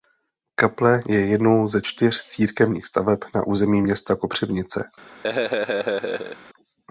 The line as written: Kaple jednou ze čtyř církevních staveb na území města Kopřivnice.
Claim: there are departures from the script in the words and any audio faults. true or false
true